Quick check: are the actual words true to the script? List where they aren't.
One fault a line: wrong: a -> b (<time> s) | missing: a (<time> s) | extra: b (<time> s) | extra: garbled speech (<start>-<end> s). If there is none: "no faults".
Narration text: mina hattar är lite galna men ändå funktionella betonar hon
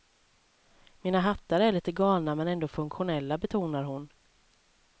no faults